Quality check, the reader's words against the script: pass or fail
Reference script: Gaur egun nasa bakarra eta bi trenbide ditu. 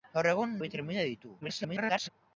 fail